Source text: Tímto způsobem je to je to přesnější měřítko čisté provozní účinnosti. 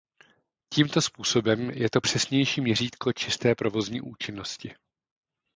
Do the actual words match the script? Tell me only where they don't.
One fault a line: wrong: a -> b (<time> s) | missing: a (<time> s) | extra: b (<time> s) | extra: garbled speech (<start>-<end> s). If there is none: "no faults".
missing: je to (2.0 s)